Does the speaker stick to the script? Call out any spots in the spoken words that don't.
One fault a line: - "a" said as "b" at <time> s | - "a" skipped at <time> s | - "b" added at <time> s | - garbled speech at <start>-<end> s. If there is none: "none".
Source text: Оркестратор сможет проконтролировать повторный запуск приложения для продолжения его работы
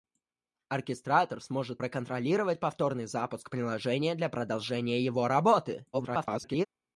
- garbled speech at 5.9-6.7 s